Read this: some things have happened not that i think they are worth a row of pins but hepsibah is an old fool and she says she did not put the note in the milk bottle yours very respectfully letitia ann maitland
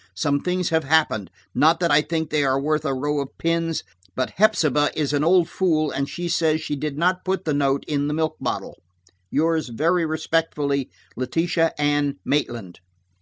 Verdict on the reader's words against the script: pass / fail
pass